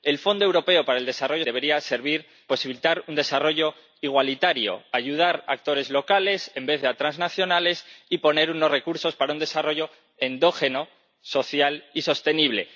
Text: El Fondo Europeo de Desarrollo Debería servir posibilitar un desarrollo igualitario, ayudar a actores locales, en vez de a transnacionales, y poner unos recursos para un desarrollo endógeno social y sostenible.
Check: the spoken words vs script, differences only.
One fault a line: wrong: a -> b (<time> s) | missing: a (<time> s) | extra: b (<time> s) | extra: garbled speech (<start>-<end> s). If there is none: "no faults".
no faults